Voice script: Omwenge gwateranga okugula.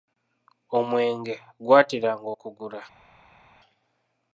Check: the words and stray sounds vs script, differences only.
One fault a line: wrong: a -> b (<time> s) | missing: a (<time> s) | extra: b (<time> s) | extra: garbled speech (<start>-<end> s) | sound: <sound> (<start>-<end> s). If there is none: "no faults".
no faults